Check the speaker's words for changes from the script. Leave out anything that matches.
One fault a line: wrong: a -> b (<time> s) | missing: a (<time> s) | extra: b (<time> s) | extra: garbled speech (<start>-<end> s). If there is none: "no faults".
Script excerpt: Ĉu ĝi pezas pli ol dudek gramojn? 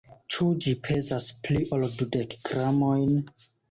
no faults